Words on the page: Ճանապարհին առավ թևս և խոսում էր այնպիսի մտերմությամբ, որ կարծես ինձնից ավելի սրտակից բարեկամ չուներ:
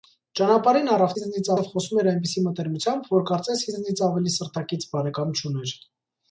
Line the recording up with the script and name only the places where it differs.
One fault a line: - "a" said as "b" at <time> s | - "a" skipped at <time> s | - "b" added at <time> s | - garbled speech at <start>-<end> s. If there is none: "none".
- "թևս" said as "ինձնից" at 1.2 s